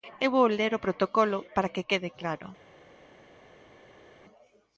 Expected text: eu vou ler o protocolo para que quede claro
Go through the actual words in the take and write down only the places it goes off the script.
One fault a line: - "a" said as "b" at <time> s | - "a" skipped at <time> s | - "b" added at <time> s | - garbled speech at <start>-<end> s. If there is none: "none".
none